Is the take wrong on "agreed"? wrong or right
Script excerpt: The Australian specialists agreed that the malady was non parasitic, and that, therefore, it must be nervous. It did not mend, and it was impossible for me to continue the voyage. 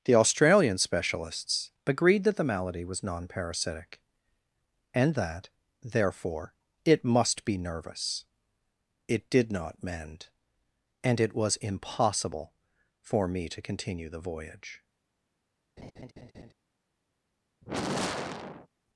right